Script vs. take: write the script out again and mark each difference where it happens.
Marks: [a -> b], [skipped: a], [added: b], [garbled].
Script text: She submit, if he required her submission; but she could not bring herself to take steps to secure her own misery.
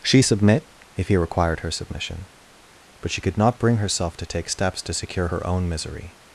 She submit, if he required her submission; but she could not bring herself to take steps to secure her own misery.